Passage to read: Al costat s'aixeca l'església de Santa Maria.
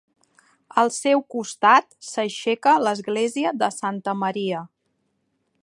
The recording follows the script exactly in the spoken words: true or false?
false